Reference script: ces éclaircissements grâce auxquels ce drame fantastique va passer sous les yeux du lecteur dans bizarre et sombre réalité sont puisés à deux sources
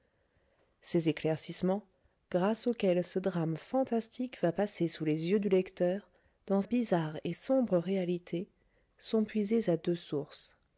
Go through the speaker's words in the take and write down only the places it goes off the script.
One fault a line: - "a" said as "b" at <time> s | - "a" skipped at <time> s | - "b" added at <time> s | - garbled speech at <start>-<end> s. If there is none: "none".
none